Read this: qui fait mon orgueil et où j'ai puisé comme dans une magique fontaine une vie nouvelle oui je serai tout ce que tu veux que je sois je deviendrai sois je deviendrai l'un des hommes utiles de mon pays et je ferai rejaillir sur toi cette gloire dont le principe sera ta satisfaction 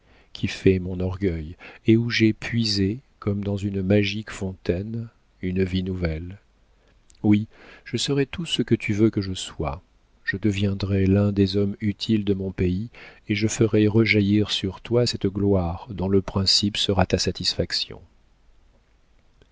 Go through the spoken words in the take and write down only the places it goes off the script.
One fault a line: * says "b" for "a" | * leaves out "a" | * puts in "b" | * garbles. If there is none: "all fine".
* leaves out "sois je deviendrai"